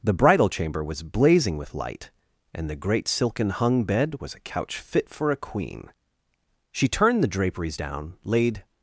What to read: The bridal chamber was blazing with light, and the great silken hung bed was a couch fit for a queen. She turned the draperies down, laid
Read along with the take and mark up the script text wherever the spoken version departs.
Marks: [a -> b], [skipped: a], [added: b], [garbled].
The bridal chamber was blazing with light, and the great silken hung bed was a couch fit for a queen. She turned the draperies down, laid